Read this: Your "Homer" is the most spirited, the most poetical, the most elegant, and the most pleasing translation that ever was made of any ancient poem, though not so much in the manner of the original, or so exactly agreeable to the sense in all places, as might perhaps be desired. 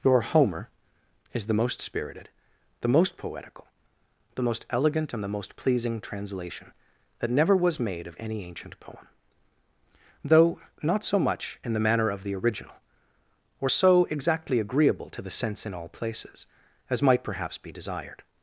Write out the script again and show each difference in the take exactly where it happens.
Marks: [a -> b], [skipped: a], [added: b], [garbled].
Your "Homer" is the most spirited, the most poetical, the most elegant, and the most pleasing translation that [ever -> never] was made of any ancient poem, though not so much in the manner of the original, or so exactly agreeable to the sense in all places, as might perhaps be desired.